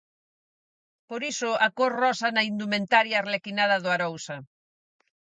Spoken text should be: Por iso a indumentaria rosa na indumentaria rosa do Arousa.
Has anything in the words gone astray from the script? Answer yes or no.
yes